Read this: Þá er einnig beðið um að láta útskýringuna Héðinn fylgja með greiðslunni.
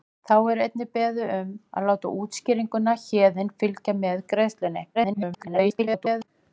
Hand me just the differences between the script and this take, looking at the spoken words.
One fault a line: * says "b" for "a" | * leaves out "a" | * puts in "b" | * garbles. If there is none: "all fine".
* garbles